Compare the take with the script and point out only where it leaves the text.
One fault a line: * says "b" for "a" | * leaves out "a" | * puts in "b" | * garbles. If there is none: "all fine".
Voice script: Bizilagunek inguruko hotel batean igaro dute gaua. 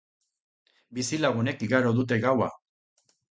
* leaves out "inguruko hotel batean"